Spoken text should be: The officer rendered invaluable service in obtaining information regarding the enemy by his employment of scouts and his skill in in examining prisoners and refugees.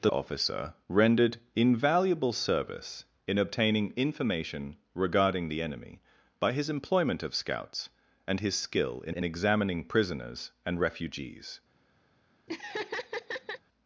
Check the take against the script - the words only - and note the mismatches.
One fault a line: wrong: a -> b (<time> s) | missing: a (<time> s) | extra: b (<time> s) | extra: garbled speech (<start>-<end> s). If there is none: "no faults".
no faults